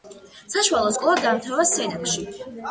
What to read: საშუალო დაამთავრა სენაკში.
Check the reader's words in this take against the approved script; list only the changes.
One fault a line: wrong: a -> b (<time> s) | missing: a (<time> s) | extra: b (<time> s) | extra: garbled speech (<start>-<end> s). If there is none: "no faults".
extra: სკოლა (0.9 s)